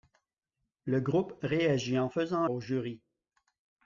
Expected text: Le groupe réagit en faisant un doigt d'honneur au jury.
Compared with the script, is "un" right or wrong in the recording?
wrong